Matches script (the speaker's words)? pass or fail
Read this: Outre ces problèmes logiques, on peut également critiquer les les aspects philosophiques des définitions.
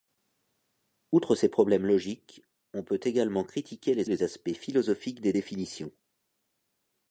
pass